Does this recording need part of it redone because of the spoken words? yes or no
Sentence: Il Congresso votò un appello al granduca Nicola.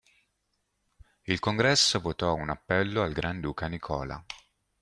no